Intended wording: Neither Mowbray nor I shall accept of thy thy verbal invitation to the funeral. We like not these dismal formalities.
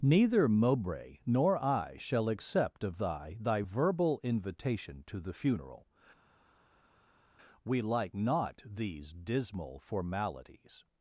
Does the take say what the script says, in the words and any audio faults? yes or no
yes